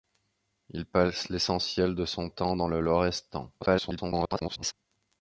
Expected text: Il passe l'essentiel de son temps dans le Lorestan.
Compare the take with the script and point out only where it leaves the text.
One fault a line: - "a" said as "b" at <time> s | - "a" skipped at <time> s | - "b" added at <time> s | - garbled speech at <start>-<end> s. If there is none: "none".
- garbled speech at 3.6-4.7 s